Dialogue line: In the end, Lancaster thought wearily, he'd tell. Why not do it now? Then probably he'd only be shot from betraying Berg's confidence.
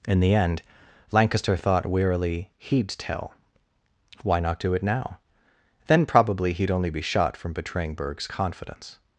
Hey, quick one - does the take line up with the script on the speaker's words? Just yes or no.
yes